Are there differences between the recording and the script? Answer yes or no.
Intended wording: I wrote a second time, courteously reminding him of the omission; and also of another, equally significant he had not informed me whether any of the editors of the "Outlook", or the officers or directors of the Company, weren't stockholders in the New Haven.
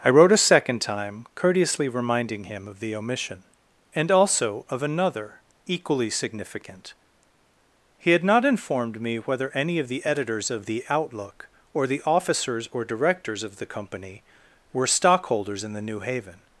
yes